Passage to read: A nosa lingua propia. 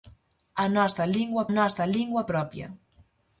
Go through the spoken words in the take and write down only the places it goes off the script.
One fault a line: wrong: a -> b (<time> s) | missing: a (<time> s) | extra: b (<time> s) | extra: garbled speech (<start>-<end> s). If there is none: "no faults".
extra: nosa lingua (1.6 s)